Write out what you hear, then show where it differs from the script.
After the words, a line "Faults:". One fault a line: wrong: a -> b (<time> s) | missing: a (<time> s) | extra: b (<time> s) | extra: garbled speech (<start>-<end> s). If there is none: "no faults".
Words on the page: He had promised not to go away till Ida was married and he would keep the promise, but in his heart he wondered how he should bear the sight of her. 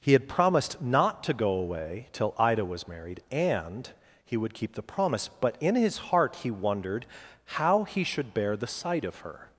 He had promised not to go away till Ida was married and he would keep the promise, but in his heart he wondered how he should bear the sight of her.
Faults:
no faults